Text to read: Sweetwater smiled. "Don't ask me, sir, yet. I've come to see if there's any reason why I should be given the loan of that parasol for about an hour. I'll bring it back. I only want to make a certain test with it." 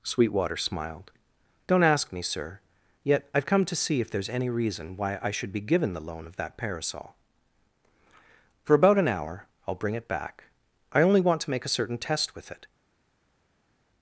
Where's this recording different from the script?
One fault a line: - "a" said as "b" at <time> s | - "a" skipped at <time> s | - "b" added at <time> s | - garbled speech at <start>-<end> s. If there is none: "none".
none